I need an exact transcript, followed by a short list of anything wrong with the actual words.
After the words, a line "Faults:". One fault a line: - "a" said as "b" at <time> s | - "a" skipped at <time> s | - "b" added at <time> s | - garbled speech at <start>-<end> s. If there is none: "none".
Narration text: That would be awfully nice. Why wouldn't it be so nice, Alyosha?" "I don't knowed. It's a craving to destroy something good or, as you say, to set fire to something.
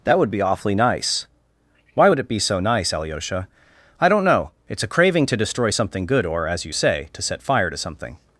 That would be awfully nice. Why would it be so nice, Alyosha?" "I don't know. It's a craving to destroy something good or, as you say, to set fire to something.
Faults:
- "wouldn't" said as "would" at 2.1 s
- "knowed" said as "know" at 4.2 s